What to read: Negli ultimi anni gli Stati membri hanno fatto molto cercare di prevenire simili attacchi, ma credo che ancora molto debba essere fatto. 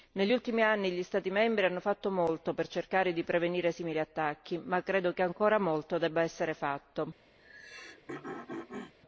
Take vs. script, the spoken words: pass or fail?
fail